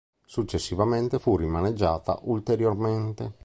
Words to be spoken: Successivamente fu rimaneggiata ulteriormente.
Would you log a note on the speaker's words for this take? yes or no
no